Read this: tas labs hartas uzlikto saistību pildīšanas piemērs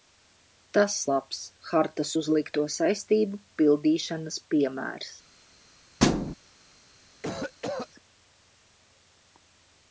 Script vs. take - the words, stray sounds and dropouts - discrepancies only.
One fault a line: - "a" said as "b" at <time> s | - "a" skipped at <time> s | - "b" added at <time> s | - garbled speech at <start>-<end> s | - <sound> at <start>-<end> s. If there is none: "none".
- thud at 6.0-6.3 s
- cough at 7.2-7.9 s